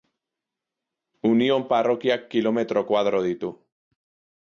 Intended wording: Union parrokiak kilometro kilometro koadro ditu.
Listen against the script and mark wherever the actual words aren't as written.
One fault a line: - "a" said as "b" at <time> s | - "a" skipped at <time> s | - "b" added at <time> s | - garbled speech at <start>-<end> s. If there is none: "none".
- "kilometro" skipped at 2.9 s